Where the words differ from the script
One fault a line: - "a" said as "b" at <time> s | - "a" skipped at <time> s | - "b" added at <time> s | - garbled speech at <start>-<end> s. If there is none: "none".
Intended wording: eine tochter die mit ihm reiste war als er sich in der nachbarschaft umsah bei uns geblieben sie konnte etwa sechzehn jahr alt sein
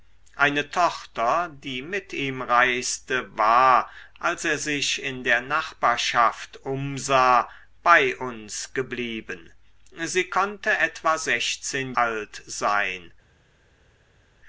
- "jahr" skipped at 11.9 s